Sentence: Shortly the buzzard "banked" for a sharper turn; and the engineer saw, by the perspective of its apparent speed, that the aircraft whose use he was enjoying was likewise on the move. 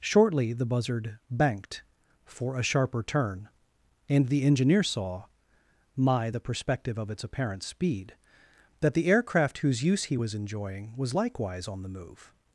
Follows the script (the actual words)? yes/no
no